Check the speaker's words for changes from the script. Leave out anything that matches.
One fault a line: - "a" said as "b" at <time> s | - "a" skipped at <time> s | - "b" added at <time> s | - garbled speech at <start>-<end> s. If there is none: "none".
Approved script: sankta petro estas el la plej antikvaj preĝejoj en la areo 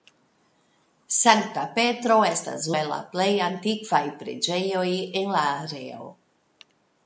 none